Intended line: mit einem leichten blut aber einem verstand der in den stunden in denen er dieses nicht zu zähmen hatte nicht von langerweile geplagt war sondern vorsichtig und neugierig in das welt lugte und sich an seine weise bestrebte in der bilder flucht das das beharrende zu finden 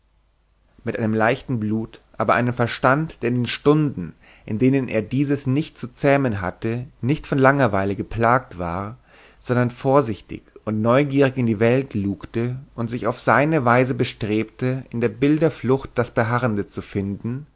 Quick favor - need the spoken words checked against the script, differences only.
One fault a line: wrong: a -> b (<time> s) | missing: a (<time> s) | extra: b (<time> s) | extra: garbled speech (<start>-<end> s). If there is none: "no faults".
wrong: das -> die (11.4 s)
wrong: an -> auf (13.1 s)
missing: das (16.1 s)